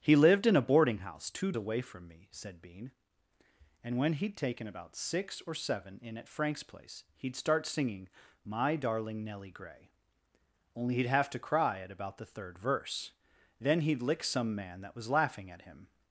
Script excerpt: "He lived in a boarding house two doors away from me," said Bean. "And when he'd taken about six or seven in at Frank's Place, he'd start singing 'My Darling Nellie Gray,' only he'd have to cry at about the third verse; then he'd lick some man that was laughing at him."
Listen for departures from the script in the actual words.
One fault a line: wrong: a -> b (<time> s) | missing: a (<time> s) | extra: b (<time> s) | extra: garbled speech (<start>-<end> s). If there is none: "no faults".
missing: doors (1.5 s)